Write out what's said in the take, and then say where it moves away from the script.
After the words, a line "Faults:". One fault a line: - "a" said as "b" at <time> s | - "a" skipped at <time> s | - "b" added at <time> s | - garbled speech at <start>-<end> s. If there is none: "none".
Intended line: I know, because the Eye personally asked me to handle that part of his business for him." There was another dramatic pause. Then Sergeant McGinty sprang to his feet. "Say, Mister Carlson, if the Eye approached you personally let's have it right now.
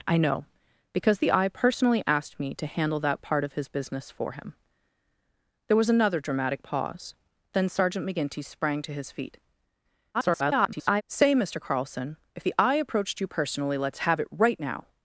I know, because the Eye personally asked me to handle that part of his business for him." There was another dramatic pause. Then Sergeant McGinty sprang to his feet. [garbled] "Say, Mister Carlson, if the Eye approached you personally let's have it right now.
Faults:
- garbled speech at 10.1-11.0 s